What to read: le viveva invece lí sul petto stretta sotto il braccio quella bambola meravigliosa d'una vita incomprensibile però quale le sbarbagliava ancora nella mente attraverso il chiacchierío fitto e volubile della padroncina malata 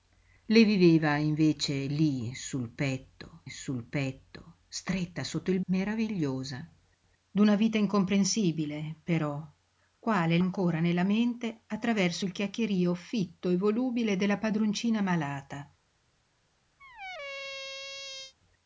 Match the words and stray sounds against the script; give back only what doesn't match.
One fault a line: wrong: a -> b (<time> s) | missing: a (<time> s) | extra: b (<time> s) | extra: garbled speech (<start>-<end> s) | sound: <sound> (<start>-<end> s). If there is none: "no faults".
extra: sul petto (3.5 s)
missing: braccio quella bambola (5.6 s)
missing: le sbarbagliava (10.4 s)
sound: squeak (16.8-18.3 s)